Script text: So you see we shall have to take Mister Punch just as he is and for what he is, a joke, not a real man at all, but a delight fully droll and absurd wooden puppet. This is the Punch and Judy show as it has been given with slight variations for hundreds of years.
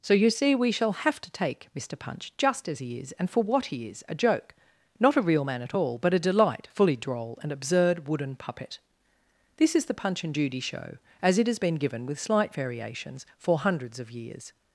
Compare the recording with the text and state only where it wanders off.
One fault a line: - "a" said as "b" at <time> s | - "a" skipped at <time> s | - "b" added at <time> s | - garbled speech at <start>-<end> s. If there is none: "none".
none